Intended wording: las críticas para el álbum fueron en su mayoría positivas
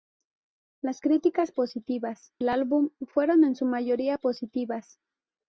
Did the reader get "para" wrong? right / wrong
wrong